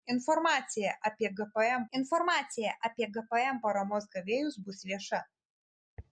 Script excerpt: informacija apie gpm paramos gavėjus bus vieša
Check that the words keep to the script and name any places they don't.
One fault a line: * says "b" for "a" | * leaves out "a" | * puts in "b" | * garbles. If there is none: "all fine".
* puts in "informacija apie gpm"